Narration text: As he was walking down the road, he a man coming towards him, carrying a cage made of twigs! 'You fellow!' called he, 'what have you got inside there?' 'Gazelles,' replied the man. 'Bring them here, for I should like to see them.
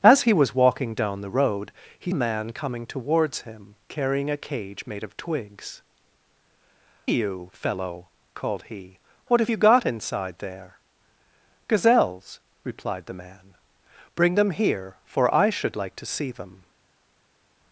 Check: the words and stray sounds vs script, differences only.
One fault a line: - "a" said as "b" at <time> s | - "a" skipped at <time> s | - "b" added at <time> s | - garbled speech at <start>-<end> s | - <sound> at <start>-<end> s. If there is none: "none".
none